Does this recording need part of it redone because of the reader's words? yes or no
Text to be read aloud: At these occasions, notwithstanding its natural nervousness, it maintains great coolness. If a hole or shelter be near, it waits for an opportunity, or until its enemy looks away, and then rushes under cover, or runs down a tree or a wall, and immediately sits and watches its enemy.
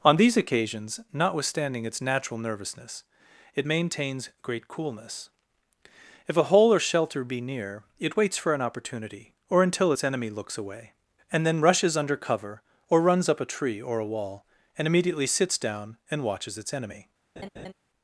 yes